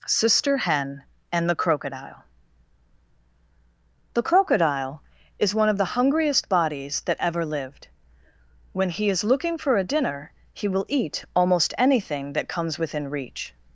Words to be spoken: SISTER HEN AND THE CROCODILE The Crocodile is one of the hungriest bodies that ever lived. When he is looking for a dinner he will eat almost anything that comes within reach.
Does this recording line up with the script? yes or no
yes